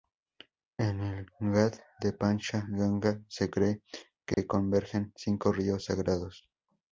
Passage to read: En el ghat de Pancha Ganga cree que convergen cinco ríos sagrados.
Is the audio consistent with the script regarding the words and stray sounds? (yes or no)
no